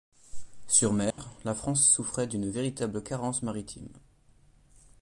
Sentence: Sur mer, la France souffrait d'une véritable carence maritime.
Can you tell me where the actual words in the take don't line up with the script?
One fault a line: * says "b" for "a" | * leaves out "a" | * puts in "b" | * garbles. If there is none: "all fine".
all fine